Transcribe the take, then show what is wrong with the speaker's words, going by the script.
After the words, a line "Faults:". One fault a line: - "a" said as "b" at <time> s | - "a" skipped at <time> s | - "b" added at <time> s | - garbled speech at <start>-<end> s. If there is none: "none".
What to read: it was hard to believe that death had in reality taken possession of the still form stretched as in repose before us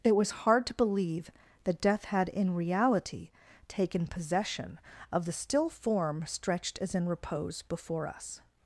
it was hard to believe that death had in reality taken possession of the still form stretched as in repose before us
Faults:
none